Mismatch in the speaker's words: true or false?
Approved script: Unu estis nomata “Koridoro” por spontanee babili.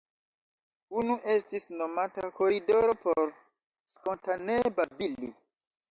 false